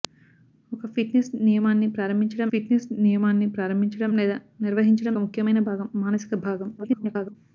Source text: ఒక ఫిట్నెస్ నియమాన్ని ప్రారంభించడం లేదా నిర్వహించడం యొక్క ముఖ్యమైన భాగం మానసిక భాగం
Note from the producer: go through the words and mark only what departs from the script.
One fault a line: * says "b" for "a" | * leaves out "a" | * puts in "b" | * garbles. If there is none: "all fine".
* puts in "ఫిట్నెస్ నియమాన్ని ప్రారంభించడం"
* leaves out "యొక్క"
* garbles